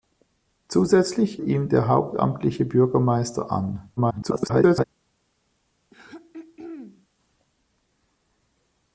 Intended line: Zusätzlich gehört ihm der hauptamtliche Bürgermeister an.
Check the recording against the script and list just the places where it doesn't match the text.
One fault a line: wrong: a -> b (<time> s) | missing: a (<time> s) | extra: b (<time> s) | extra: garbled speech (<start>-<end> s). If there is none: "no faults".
missing: gehört (1.4 s)
extra: garbled speech (4.0-4.8 s)